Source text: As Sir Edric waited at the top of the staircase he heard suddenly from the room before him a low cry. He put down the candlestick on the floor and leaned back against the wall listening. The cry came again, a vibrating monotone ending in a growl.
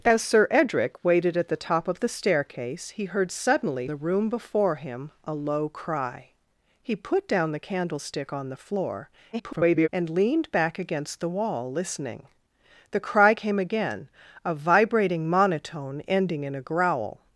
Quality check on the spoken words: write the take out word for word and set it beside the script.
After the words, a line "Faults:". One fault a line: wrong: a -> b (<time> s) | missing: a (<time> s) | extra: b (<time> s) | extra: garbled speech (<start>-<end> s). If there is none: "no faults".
As Sir Edric waited at the top of the staircase he heard suddenly the room before him a low cry. He put down the candlestick on the floor [garbled] and leaned back against the wall listening. The cry came again, a vibrating monotone ending in a growl.
Faults:
missing: from (3.9 s)
extra: garbled speech (9.3-9.9 s)